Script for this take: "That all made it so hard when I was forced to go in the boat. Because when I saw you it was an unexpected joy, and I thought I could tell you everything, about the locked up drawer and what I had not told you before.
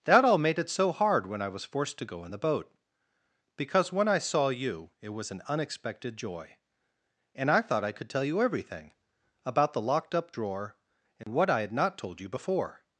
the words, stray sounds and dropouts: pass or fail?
fail